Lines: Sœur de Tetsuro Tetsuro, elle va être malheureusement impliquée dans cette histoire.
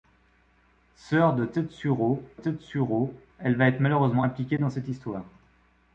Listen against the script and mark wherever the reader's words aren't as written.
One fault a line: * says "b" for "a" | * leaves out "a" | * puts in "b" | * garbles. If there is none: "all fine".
all fine